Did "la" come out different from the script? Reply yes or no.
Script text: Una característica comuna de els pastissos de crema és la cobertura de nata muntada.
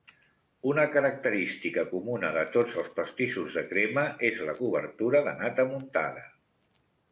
no